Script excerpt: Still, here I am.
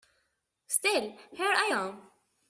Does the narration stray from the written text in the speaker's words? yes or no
no